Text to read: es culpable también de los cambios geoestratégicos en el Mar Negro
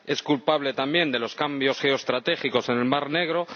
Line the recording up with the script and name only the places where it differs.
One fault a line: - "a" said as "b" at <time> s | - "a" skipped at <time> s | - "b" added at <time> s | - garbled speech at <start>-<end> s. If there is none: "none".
none